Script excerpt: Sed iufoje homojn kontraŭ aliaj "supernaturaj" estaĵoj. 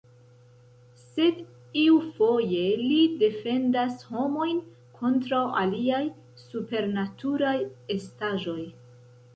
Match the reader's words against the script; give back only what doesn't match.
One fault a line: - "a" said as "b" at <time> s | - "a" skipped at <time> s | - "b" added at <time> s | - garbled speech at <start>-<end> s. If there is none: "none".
- "li defendas" added at 2.9 s